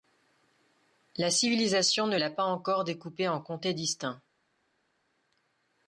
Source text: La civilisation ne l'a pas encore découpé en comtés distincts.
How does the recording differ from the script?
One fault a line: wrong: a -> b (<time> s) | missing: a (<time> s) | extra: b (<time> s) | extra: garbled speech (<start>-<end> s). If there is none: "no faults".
no faults